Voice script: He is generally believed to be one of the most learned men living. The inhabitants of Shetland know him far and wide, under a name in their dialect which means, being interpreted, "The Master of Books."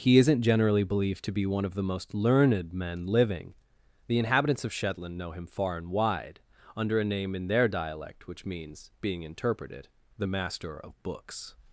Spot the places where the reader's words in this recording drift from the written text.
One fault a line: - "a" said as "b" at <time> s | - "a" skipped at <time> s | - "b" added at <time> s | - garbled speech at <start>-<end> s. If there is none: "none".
- "is" said as "isn't" at 0.2 s